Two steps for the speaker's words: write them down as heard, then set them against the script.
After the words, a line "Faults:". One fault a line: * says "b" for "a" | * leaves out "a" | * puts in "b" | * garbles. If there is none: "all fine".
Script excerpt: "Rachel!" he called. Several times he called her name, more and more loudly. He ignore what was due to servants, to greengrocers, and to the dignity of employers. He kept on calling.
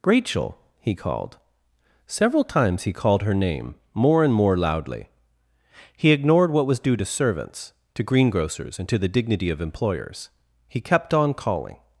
"Rachel!" he called. Several times he called her name, more and more loudly. He ignored what was due to servants, to greengrocers, and to the dignity of employers. He kept on calling.
Faults:
* says "ignored" for "ignore"